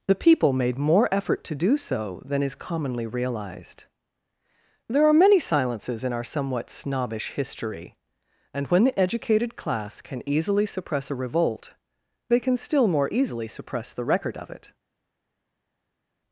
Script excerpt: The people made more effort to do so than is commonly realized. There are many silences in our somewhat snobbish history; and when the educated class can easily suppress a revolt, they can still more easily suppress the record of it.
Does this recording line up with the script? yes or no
yes